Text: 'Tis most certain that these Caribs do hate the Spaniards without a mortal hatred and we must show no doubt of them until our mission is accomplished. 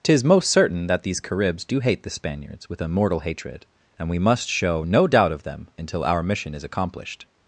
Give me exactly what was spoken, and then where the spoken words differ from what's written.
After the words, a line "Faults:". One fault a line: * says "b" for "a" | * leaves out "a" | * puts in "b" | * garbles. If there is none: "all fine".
'Tis most certain that these Caribs do hate the Spaniards with a mortal hatred and we must show no doubt of them until our mission is accomplished.
Faults:
* says "with" for "without"